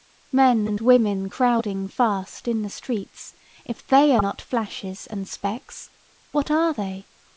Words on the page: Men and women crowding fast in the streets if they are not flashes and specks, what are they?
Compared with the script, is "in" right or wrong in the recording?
right